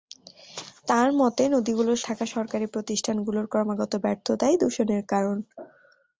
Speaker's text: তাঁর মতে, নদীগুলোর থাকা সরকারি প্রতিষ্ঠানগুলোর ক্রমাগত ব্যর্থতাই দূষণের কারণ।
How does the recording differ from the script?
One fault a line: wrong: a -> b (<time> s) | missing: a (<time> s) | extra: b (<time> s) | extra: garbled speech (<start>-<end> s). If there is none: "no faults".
no faults